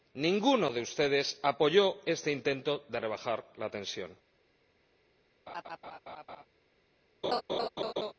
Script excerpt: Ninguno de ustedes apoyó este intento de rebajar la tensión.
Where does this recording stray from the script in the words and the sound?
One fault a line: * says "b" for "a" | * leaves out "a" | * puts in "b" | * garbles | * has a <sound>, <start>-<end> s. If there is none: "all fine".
* has a laugh, 5.5-6.5 s
* has a laugh, 7.2-8.1 s